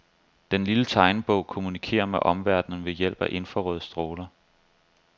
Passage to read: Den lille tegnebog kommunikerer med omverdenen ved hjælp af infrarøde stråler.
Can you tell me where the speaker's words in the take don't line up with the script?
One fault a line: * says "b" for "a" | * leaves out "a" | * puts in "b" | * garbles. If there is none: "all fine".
all fine